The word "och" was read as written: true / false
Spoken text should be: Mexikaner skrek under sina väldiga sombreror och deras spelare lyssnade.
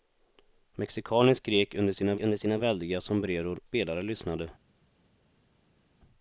false